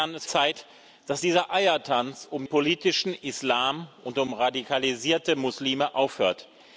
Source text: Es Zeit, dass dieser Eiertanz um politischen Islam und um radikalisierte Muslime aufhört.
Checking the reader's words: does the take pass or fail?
pass